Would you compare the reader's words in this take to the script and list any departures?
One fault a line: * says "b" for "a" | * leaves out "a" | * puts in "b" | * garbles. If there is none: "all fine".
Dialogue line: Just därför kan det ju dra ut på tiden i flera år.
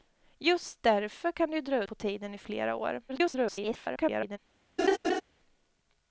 * leaves out "ut"
* garbles